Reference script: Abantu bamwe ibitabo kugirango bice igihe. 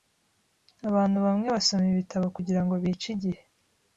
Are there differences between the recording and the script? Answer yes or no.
yes